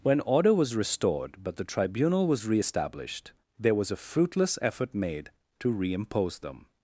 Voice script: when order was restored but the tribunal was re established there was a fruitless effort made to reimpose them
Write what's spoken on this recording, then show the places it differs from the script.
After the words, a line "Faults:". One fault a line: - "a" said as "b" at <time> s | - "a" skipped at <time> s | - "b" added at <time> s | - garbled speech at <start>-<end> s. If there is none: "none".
when order was restored but the tribunal was re established there was a fruitless effort made to reimpose them
Faults:
none